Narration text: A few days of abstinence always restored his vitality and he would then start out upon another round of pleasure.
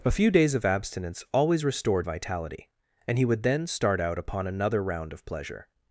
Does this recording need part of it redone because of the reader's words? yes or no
yes